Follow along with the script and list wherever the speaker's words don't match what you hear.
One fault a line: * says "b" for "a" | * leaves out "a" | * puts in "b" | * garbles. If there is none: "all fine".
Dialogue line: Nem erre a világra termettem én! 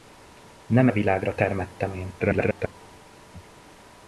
* leaves out "erre"
* garbles